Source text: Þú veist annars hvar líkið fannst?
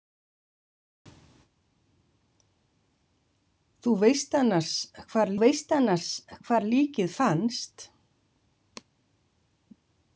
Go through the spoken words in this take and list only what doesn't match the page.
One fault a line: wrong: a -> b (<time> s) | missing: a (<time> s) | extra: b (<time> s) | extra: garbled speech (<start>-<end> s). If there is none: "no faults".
extra: veist annars hvar (5.4 s)